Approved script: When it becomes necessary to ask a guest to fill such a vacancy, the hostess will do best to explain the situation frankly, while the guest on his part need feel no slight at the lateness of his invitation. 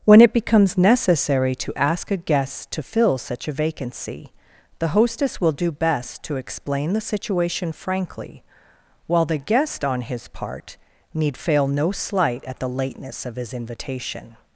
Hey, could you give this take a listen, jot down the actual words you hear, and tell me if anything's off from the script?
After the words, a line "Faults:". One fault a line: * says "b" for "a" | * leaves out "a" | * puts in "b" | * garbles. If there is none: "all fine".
When it becomes necessary to ask a guest to fill such a vacancy, the hostess will do best to explain the situation frankly, while the guest on his part need fail no slight at the lateness of his invitation.
Faults:
* says "fail" for "feel"